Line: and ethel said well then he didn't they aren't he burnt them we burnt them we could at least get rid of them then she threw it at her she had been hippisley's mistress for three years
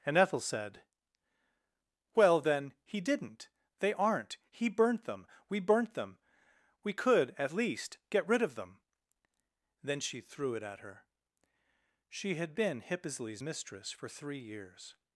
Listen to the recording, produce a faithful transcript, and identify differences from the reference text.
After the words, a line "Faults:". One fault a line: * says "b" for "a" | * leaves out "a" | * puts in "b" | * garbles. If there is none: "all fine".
and ethel said well then he didn't they aren't he burnt them we burnt them we could at least get rid of them then she threw it at her she had been hippisley's mistress for three years
Faults:
all fine